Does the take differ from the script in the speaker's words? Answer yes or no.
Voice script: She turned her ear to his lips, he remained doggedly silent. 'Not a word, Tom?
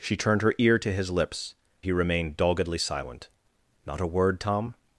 no